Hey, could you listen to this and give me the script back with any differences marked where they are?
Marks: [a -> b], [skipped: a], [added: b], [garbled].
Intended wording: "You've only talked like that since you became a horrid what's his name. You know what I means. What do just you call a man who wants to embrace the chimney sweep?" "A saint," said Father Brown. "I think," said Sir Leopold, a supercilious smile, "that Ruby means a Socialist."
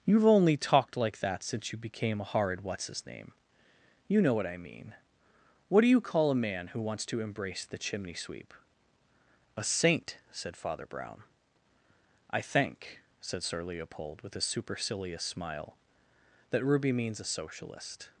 "You've only talked like that since you became a horrid what's his name. You know what I [means. -> mean] What do [skipped: just] you call a man who wants to embrace the chimney sweep?" "A saint," said Father Brown. "I think," said Sir Leopold, [added: with] a supercilious smile, "that Ruby means a Socialist."